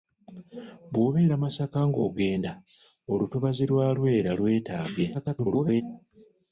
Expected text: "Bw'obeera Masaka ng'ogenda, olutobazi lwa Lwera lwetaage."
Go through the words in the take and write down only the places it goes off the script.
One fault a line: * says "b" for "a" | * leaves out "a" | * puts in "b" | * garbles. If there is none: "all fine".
* garbles